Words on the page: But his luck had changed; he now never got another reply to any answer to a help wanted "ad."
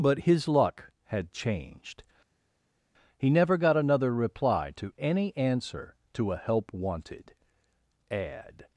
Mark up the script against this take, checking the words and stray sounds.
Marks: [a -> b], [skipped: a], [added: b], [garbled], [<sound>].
But his luck had changed; he [skipped: now] never got another reply to any answer to a help wanted "ad."